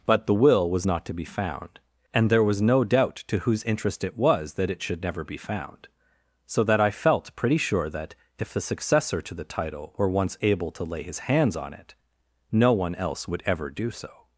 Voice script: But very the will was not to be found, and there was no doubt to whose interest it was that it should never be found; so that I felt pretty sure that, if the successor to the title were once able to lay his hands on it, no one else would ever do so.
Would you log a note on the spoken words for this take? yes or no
yes